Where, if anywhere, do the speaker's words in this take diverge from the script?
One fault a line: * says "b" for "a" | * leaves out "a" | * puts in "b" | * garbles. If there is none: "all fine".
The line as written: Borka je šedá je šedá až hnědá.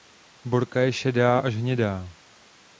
* leaves out "je šedá"